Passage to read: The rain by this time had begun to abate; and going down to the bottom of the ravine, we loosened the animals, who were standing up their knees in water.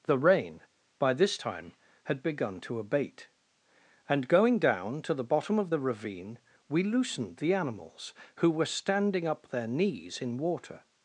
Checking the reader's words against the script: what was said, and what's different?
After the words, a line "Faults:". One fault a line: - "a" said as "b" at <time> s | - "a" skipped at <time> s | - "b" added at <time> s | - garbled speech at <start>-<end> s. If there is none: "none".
The rain by this time had begun to abate; and going down to the bottom of the ravine, we loosened the animals, who were standing up their knees in water.
Faults:
none